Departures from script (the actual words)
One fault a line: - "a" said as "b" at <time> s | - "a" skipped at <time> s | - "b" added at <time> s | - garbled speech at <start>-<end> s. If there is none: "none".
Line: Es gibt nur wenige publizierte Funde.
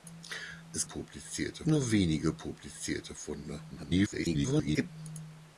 - "gibt" said as "publizierte" at 0.8 s
- garbled speech at 3.7-4.9 s